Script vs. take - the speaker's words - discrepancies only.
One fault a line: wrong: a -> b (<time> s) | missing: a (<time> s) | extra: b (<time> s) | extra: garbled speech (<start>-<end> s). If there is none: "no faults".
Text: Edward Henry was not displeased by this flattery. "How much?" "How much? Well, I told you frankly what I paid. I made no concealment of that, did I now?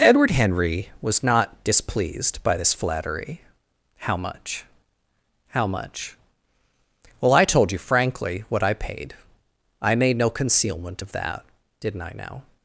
wrong: did -> didn't (11.8 s)